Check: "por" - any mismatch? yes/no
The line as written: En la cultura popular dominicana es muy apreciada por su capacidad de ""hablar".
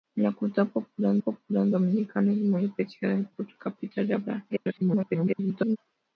no